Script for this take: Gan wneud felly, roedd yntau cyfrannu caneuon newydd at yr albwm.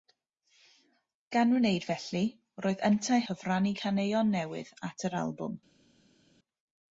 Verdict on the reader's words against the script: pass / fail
pass